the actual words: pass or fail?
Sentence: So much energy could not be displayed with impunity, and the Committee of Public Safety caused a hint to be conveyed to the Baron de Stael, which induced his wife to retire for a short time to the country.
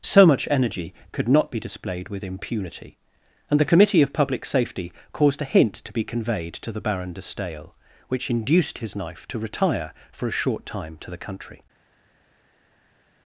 fail